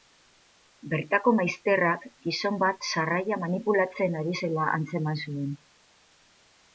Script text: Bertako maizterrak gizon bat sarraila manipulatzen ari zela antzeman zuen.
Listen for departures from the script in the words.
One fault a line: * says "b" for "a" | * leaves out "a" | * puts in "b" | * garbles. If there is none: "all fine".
all fine